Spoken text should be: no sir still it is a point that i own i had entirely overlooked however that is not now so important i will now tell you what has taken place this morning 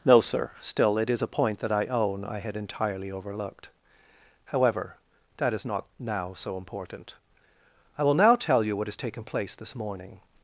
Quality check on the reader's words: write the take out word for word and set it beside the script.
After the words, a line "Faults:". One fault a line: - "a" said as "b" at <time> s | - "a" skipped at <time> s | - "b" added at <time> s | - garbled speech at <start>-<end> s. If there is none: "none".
no sir still it is a point that i own i had entirely overlooked however that is not now so important i will now tell you what has taken place this morning
Faults:
none